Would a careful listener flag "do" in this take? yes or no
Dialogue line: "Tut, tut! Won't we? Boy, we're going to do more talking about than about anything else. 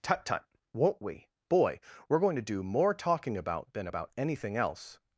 no